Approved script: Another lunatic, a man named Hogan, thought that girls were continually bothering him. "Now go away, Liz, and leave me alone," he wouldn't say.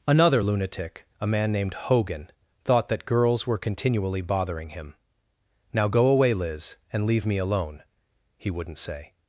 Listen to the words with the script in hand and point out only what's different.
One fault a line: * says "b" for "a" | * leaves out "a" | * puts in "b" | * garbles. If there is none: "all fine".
all fine